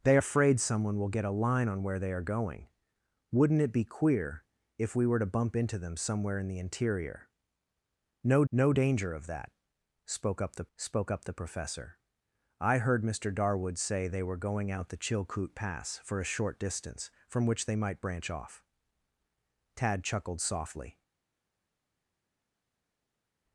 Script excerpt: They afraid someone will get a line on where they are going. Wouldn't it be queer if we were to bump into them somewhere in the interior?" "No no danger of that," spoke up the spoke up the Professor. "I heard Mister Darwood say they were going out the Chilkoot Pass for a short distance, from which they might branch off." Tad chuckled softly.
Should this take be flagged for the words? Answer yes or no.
no